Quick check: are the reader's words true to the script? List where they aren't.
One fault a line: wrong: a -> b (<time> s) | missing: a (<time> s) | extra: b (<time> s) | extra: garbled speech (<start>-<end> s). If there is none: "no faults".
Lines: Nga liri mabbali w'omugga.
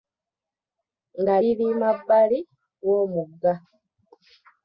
no faults